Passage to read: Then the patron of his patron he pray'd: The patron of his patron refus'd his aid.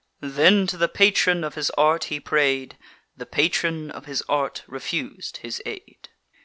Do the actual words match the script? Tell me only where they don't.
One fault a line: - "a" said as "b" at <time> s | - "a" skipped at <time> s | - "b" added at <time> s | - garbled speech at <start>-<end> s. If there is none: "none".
- "to" added at 0.7 s
- "patron" said as "art" at 1.8 s
- "patron" said as "art" at 4.3 s